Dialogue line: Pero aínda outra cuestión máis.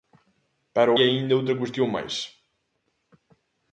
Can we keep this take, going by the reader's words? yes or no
yes